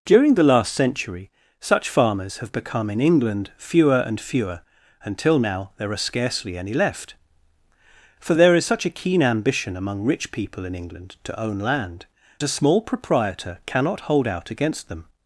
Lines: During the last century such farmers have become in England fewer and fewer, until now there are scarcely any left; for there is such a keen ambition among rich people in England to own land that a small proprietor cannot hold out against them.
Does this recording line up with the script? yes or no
no